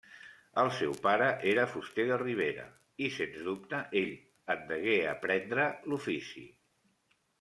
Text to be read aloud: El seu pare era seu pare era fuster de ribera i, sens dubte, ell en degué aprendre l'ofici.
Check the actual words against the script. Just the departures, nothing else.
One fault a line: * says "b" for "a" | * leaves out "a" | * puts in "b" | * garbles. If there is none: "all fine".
* leaves out "seu pare era"